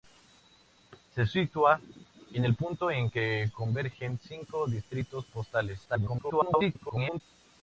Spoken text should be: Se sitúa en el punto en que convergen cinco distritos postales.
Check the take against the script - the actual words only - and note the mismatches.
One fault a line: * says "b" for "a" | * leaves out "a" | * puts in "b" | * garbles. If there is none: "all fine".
* garbles